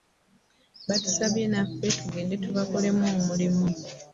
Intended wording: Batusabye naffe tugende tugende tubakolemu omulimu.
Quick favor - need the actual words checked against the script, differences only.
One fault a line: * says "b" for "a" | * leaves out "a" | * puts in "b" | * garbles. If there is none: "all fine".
* leaves out "tugende"